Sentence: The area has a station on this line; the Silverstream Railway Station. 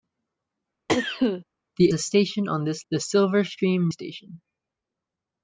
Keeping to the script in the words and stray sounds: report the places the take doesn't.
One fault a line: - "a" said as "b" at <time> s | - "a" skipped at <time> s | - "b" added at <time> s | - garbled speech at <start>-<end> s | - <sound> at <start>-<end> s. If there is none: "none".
- cough at 0.9-1.4 s
- "area has" skipped at 1.9 s
- "line" skipped at 2.8 s
- "Railway" skipped at 3.9 s